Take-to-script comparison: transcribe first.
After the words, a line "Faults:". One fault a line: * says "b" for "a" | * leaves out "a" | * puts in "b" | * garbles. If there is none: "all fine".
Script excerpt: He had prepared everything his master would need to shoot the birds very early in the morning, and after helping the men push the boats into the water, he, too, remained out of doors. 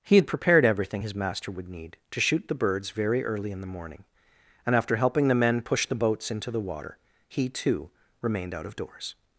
He had prepared everything his master would need to shoot the birds very early in the morning, and after helping the men push the boats into the water, he, too, remained out of doors.
Faults:
all fine